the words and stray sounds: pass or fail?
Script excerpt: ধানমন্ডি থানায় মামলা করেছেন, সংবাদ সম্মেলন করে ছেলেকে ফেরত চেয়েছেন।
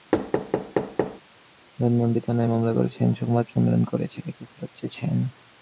fail